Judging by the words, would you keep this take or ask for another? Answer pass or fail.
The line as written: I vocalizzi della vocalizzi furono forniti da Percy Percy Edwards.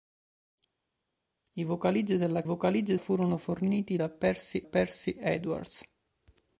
pass